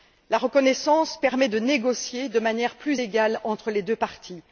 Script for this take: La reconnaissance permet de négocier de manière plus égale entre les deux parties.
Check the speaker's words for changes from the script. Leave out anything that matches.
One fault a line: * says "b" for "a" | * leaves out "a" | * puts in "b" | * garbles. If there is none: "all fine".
all fine